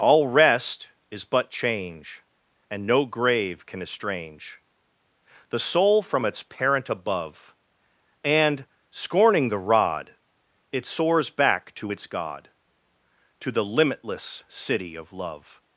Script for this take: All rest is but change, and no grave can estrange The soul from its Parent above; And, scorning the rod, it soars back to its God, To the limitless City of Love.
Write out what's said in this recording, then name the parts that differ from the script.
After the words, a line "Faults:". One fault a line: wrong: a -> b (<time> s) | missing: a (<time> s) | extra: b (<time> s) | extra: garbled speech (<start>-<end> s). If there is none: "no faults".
All rest is but change, and no grave can estrange The soul from its Parent above; And, scorning the rod, it soars back to its God, To the limitless City of Love.
Faults:
no faults